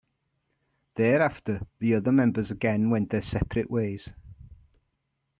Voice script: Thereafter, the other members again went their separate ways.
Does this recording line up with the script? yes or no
yes